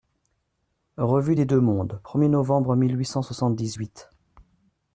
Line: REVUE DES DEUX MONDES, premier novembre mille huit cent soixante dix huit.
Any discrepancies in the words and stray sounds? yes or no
no